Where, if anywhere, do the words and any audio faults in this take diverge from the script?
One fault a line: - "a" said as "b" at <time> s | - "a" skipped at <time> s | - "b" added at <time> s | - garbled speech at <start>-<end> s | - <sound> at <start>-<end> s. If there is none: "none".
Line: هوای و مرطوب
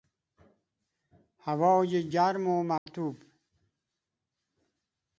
- "گرم" added at 2.1 s
- dropout at 2.8-2.9 s